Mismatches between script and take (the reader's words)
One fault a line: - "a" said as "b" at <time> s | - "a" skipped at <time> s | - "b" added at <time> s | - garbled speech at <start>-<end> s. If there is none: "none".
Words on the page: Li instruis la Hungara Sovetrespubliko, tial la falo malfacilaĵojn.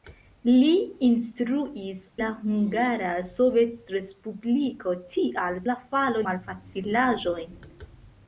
none